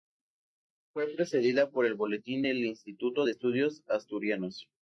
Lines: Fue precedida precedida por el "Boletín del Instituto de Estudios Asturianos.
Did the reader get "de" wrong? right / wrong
right